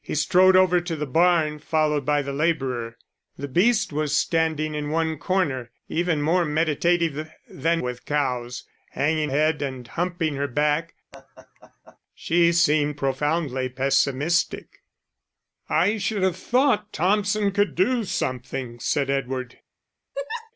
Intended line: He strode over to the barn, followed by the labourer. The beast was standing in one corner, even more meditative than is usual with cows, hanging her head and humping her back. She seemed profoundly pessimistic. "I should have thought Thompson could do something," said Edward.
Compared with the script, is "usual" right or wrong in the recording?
wrong